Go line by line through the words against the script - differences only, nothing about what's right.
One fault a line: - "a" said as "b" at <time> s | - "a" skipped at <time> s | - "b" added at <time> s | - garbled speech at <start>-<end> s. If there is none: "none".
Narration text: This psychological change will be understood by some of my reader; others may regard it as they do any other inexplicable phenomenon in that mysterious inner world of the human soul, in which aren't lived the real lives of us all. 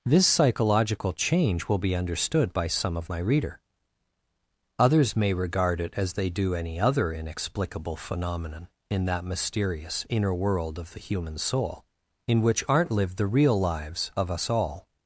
none